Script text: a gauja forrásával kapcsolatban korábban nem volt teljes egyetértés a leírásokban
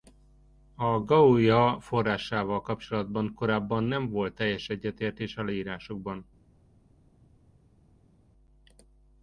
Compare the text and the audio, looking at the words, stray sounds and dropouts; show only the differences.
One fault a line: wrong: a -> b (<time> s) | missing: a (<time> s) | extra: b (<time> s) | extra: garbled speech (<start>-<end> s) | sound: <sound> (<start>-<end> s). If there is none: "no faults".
no faults